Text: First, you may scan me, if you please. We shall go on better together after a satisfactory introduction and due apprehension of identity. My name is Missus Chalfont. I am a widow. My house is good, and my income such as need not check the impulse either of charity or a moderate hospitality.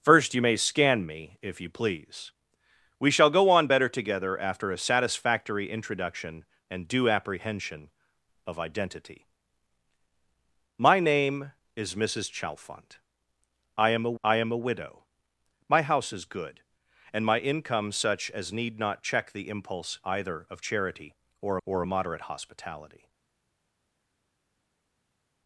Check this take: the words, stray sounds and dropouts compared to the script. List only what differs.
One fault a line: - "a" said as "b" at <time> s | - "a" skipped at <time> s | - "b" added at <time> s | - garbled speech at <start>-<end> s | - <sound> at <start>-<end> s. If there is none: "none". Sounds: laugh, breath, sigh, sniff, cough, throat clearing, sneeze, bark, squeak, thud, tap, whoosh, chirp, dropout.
- "I am a" added at 14.2 s
- "or" added at 21.6 s